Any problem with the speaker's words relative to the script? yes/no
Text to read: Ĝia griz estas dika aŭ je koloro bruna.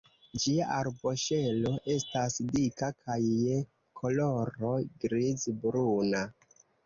yes